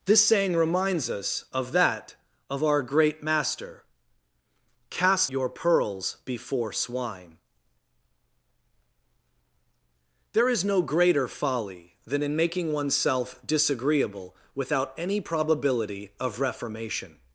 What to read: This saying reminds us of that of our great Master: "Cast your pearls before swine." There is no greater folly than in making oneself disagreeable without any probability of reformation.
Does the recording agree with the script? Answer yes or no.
yes